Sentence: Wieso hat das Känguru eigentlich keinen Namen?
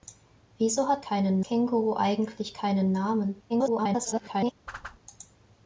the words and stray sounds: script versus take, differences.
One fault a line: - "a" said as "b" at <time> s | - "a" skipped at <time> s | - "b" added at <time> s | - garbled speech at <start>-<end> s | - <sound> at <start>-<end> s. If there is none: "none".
- "das" said as "keinen" at 1.0 s
- garbled speech at 3.5-4.5 s
- whoosh at 4.7-5.0 s